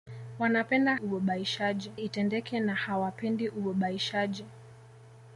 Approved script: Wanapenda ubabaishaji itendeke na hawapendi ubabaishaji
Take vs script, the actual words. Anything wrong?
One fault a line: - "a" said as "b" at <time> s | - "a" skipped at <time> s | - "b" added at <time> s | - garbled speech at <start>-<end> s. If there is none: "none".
none